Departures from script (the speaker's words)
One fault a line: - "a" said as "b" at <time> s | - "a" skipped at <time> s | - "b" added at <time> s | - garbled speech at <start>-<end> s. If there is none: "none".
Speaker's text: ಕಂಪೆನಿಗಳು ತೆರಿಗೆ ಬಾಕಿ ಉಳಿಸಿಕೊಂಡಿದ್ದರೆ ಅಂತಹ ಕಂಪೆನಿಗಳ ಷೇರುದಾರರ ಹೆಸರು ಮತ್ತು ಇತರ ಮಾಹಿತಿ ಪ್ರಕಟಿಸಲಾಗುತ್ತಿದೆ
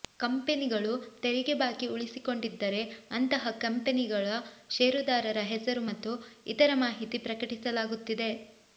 none